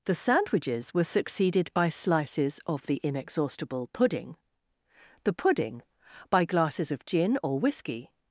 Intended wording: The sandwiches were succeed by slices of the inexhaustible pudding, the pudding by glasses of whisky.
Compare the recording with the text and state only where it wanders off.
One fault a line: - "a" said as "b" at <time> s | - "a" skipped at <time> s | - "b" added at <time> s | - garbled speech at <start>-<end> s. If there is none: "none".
- "succeed" said as "succeeded" at 1.0 s
- "gin or" added at 7.0 s